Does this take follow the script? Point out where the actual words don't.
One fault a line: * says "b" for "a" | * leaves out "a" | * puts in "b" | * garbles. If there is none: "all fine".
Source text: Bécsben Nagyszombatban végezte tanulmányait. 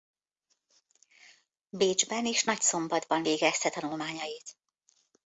* puts in "és"